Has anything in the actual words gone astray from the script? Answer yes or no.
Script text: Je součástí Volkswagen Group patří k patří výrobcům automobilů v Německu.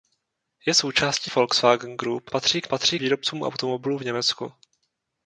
no